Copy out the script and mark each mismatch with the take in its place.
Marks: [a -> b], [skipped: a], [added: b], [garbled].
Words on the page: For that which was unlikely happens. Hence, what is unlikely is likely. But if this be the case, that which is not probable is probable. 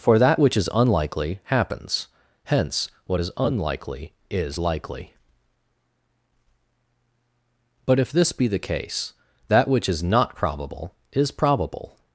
For that which [was -> is] unlikely happens. Hence, what is unlikely is likely. But if this be the case, that which is not probable is probable.